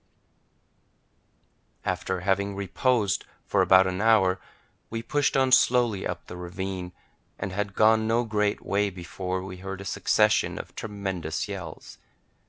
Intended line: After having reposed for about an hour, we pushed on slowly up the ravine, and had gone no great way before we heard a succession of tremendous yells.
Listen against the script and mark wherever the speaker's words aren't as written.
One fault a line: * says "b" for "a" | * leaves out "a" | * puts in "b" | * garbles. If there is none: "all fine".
all fine